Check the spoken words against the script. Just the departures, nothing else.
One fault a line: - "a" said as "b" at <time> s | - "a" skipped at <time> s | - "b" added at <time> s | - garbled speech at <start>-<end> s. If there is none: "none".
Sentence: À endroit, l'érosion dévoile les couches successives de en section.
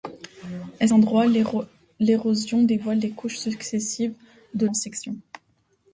none